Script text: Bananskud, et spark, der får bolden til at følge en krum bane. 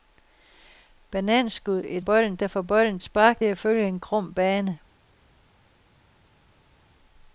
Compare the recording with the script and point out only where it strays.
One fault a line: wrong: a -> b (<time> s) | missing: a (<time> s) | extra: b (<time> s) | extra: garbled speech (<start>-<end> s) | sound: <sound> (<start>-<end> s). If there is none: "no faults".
wrong: spark -> bolden (2.0 s)
wrong: til -> spark (3.0 s)